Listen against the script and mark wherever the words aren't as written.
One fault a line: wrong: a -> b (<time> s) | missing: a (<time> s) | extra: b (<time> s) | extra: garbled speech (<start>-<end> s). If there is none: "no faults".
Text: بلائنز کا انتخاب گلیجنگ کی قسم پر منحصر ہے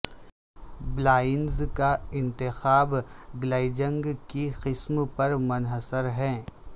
no faults